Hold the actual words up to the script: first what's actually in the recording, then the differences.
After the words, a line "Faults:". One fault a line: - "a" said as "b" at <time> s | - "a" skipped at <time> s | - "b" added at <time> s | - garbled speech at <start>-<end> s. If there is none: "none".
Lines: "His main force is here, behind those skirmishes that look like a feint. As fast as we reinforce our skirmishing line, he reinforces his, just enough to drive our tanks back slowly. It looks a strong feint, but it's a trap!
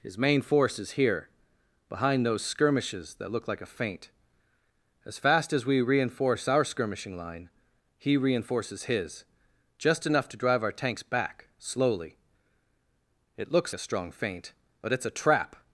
"His main force is here, behind those skirmishes that look like a feint. As fast as we reinforce our skirmishing line, he reinforces his, just enough to drive our tanks back slowly. It looks a strong feint, but it's a trap!
Faults:
none